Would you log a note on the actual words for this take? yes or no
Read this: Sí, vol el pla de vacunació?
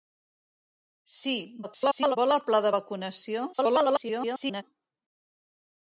yes